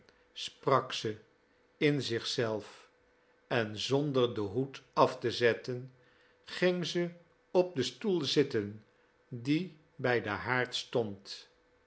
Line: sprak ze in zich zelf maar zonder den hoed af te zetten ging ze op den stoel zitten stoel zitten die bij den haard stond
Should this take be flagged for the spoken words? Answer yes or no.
yes